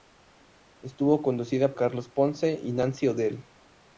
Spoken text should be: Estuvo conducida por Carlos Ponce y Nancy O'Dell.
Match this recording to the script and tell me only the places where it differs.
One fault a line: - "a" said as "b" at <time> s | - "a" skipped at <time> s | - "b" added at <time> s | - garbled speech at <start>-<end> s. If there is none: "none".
- "por" skipped at 1.8 s